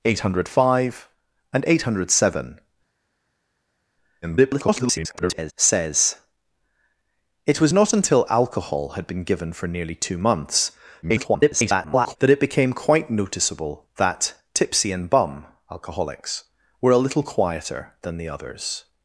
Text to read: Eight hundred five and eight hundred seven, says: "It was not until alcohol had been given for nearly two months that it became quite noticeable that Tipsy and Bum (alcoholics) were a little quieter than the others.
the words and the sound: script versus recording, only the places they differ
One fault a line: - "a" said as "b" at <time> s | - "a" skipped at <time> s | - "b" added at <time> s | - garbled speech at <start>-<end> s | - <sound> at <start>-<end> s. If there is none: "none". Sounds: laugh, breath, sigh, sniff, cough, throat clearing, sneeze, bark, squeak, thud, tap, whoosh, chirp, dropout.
- garbled speech at 4.2-5.5 s
- garbled speech at 11.0-12.2 s